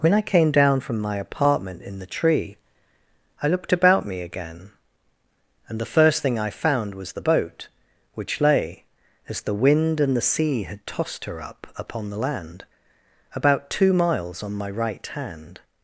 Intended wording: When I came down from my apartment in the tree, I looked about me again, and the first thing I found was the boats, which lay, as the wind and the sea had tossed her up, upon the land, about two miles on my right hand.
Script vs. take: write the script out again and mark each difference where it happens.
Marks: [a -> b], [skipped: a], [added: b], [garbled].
When I came down from my apartment in the tree, I looked about me again, and the first thing I found was the [boats, -> boat] which lay, as the wind and the sea had tossed her up, upon the land, about two miles on my right hand.